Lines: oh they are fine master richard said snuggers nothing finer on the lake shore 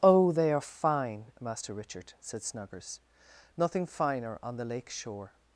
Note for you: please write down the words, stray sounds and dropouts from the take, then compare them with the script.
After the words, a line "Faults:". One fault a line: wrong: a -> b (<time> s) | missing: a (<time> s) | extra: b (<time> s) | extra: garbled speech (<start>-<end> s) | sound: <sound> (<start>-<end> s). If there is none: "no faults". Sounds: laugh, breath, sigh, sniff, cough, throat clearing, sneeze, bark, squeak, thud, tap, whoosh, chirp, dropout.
oh they are fine master richard said snuggers nothing finer on the lake shore
Faults:
no faults